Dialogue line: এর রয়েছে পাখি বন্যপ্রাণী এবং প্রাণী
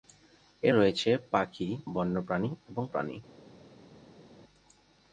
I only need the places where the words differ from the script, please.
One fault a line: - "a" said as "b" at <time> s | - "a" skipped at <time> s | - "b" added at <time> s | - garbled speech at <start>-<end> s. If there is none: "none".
none